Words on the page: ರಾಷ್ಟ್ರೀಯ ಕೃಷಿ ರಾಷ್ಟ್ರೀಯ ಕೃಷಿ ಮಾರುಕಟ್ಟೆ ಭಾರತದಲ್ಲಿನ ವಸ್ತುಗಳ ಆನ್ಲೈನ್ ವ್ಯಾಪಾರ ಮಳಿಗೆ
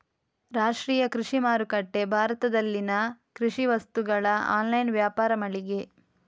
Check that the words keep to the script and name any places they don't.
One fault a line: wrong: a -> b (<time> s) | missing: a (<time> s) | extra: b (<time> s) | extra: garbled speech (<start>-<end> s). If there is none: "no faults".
missing: ರಾಷ್ಟ್ರೀಯ ಕೃಷಿ (1.4 s)
extra: ಕೃಷಿ (3.3 s)